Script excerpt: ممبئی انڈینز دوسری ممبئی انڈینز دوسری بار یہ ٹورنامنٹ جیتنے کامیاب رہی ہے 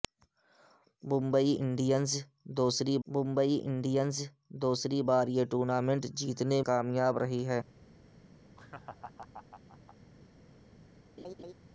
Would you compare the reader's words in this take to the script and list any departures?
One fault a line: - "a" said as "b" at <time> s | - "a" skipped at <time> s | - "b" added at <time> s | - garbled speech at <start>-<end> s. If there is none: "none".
none